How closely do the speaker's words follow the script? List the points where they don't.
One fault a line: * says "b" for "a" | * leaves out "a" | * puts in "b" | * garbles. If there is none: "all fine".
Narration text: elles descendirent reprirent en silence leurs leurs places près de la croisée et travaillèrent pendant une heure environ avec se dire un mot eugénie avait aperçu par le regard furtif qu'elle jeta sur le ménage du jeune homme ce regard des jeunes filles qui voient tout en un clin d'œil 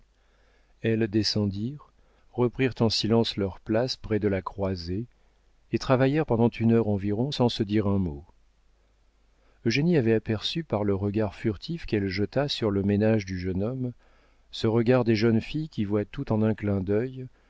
* leaves out "leurs"
* says "sans" for "avec"